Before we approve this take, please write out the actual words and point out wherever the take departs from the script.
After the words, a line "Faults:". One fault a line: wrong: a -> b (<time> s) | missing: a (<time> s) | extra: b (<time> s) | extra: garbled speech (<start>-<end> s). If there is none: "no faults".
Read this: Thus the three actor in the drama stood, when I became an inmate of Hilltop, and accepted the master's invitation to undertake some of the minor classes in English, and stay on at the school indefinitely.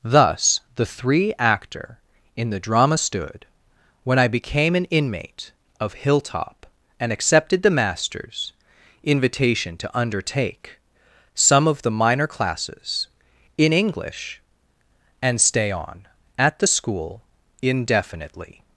Thus the three actor in the drama stood, when I became an inmate of Hilltop, and accepted the master's invitation to undertake some of the minor classes in English, and stay on at the school indefinitely.
Faults:
no faults